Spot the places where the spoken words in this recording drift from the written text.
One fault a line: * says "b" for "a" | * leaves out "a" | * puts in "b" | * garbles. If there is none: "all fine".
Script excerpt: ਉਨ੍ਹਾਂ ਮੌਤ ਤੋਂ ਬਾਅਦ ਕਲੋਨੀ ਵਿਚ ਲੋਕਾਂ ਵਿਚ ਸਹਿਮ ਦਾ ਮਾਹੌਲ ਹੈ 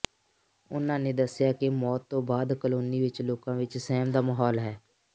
* puts in "ਨੇ ਦੱਸਿਆ ਕਿ"